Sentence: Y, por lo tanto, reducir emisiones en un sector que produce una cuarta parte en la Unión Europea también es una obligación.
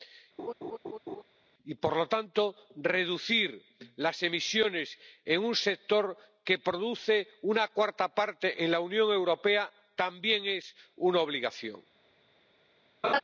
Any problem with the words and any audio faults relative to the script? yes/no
yes